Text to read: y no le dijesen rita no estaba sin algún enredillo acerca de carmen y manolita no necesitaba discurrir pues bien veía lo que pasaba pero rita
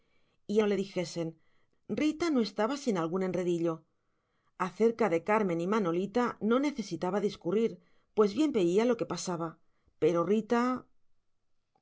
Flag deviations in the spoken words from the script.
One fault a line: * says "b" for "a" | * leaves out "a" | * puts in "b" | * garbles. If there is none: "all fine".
all fine